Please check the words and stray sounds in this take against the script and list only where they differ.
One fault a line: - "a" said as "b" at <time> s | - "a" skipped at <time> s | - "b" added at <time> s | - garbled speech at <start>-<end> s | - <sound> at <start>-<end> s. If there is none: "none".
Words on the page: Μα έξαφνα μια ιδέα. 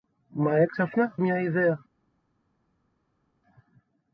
none